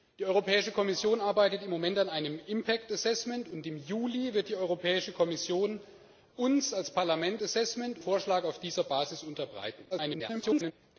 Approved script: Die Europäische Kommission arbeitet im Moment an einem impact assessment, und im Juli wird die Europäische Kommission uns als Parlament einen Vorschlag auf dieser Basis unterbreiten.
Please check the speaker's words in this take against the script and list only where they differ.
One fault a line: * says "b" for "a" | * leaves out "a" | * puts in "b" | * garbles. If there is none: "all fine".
* says "assessment" for "einen"
* garbles